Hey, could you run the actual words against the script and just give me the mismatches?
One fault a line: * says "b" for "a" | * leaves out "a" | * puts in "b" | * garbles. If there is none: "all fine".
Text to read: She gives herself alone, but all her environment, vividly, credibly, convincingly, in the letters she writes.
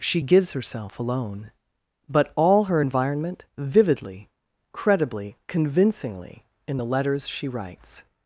all fine